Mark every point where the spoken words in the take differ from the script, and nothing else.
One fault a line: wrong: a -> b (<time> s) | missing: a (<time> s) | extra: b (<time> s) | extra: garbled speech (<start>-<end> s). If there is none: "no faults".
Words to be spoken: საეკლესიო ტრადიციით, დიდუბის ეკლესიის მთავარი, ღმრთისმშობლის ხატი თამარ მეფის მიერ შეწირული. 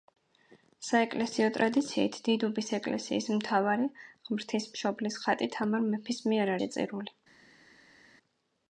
no faults